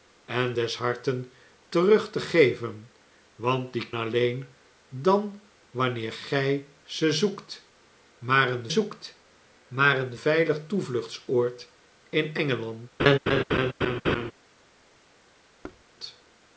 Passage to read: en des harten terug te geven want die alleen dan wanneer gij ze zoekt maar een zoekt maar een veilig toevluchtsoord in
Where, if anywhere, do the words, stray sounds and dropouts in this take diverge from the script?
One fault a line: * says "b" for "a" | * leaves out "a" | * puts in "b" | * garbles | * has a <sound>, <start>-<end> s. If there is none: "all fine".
* has a laugh, 13.0-14.3 s
* has a thud, 15.6-15.8 s